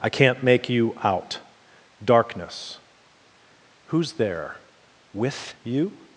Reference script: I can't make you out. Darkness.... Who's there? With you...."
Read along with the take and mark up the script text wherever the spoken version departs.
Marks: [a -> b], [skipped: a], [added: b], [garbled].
I can't make you out. Darkness.... Who's there? With you...."